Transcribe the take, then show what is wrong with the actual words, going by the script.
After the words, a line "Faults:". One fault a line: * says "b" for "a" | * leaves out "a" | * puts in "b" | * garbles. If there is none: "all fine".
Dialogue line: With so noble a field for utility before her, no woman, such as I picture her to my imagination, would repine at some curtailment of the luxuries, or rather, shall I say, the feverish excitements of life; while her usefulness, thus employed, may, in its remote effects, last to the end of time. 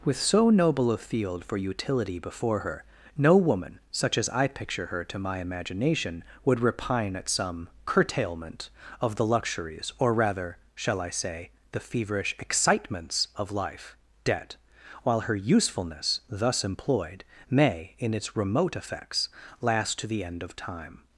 With so noble a field for utility before her, no woman, such as I picture her to my imagination, would repine at some curtailment of the luxuries, or rather, shall I say, the feverish excitements of life; debt while her usefulness, thus employed, may, in its remote effects, last to the end of time.
Faults:
* puts in "debt"